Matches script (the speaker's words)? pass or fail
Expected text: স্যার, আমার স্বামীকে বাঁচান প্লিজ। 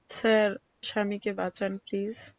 fail